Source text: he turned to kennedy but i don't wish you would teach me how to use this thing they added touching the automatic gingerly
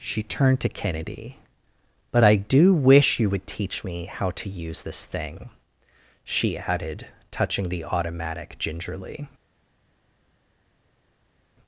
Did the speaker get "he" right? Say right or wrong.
wrong